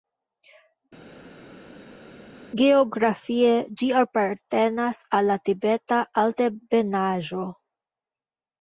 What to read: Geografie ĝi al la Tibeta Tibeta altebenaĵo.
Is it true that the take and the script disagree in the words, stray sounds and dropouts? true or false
true